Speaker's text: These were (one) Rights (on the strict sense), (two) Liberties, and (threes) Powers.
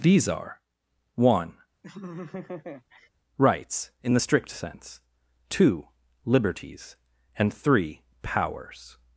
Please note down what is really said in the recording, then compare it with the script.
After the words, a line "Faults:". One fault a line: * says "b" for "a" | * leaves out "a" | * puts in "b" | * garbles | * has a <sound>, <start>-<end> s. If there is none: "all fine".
These are (one) Rights (in the strict sense), (two) Liberties, and (three) Powers.
Faults:
* says "are" for "were"
* has a laugh, 1.8-3.1 s
* says "in" for "on"
* says "three" for "threes"